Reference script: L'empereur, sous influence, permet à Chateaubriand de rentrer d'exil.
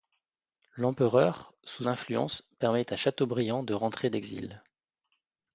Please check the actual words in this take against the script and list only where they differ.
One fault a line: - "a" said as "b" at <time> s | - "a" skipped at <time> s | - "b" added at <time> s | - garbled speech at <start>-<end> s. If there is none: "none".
none